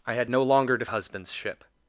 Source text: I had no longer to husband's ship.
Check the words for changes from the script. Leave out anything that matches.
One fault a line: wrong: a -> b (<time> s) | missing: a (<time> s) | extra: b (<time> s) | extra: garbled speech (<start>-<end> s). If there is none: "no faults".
no faults